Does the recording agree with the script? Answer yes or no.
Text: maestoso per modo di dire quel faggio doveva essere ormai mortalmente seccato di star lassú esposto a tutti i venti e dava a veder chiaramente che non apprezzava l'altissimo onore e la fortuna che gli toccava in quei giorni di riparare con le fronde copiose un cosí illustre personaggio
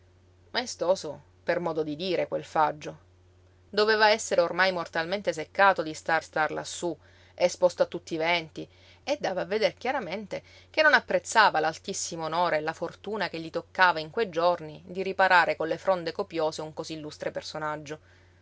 no